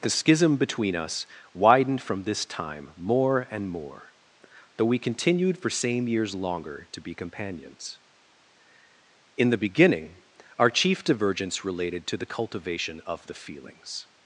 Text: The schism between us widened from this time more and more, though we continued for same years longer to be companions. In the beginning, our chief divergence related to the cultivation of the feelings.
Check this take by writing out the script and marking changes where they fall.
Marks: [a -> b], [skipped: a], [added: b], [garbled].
The schism between us widened from this time more and more, though we continued for same years longer to be companions. In the beginning, our chief divergence related to the cultivation of the feelings.